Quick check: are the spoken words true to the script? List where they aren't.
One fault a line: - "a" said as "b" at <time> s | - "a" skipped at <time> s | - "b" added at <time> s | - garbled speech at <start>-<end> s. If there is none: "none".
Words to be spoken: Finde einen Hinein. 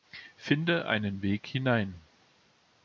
- "Weg" added at 1.2 s